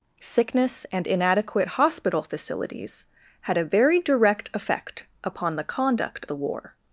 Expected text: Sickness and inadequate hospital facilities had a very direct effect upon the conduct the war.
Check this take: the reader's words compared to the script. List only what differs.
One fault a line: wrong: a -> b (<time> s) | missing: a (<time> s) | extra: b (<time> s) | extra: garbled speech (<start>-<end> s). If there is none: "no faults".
no faults